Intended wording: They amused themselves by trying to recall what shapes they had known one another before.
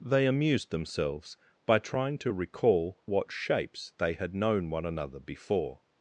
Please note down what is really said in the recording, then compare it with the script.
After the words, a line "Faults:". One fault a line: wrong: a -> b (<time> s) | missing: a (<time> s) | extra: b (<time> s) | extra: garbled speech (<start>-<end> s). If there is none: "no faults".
They amused themselves by trying to recall what shapes they had known one another before.
Faults:
no faults